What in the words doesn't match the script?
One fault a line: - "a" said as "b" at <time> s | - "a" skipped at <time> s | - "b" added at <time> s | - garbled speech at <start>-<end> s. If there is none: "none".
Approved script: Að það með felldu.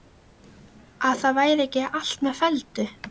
- "væri ekki allt" added at 1.4 s